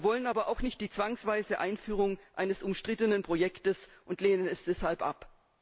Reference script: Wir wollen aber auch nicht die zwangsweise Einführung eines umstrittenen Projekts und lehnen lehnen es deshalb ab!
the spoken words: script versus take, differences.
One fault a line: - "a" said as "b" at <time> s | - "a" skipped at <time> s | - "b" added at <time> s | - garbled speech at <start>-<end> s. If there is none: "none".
- "lehnen" skipped at 4.5 s